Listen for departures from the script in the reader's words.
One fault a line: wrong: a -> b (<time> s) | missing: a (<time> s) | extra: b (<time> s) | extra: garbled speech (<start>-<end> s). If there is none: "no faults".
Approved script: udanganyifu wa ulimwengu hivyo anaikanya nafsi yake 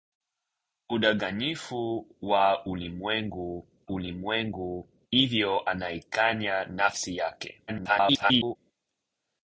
extra: ulimwengu (3.9 s)
extra: garbled speech (7.7-8.6 s)